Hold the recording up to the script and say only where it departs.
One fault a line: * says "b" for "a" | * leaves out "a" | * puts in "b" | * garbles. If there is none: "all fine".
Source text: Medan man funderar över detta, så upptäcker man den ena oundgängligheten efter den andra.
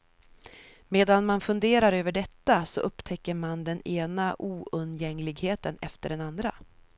all fine